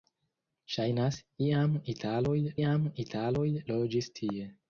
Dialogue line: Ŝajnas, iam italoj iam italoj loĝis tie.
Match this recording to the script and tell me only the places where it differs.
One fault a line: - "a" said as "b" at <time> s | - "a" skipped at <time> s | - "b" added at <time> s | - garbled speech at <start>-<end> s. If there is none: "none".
none